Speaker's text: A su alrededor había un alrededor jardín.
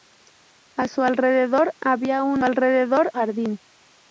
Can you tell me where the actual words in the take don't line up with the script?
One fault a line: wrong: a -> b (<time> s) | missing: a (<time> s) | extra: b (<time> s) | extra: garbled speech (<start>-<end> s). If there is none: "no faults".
no faults